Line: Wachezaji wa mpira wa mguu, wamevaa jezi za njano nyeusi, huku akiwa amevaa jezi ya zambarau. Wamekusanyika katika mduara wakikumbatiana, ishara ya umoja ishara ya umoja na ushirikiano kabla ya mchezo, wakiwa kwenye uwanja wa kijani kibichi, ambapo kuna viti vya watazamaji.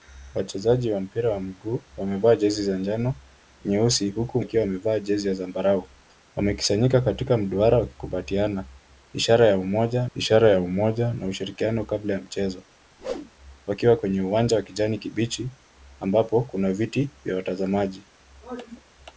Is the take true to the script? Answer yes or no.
yes